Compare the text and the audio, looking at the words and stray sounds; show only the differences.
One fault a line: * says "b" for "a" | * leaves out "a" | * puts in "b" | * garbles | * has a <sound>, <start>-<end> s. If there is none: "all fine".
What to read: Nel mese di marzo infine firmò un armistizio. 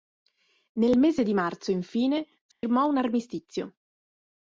* has a dropout, 2.5-2.6 s